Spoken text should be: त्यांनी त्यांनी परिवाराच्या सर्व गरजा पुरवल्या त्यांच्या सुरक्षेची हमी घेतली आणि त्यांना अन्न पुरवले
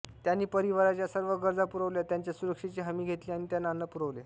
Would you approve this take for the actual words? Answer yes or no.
no